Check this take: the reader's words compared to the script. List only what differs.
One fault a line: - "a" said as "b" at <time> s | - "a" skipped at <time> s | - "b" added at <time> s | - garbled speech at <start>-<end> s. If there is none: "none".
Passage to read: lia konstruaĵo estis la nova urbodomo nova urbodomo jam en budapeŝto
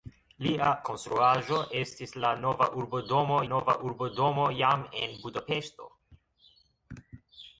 none